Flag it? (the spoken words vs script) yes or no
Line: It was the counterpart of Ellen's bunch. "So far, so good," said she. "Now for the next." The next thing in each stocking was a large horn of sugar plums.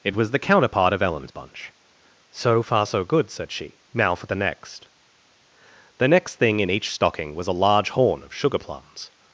no